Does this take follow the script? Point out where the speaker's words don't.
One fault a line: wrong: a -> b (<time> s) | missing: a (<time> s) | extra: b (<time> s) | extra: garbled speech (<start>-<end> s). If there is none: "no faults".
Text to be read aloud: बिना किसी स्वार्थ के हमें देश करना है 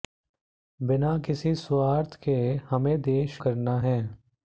no faults